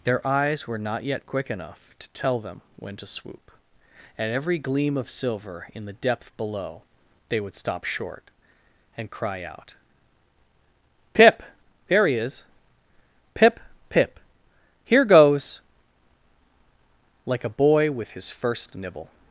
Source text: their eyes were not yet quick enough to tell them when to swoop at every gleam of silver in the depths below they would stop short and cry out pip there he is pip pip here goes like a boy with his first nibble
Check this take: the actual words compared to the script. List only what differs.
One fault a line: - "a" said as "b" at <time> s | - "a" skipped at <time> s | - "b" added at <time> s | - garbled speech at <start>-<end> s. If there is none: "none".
- "depths" said as "depth" at 5.9 s